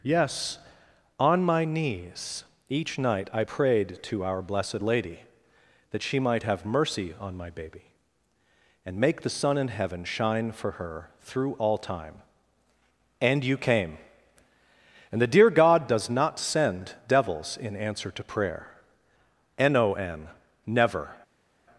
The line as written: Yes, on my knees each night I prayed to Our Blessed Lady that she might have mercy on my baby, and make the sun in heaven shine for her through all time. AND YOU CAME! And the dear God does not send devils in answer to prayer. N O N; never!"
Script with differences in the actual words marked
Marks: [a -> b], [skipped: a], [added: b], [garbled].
Yes, on my knees each night I prayed to Our Blessed Lady that she might have mercy on my baby, and make the sun in heaven shine for her through all time. AND YOU CAME! And the dear God does not send devils in answer to prayer. N O N; never!"